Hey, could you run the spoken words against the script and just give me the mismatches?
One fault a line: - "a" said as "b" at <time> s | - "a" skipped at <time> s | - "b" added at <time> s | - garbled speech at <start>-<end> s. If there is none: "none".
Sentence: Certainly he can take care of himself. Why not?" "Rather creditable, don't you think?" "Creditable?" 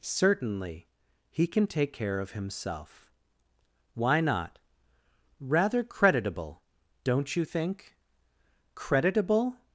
none